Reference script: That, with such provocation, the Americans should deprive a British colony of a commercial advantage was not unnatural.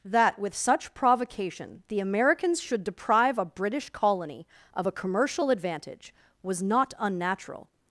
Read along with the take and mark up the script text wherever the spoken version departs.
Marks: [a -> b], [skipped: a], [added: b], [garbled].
That, with such provocation, the Americans should deprive a British colony of a commercial advantage was not unnatural.